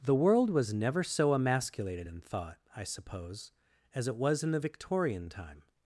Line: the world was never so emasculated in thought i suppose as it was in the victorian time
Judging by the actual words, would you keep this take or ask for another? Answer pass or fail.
pass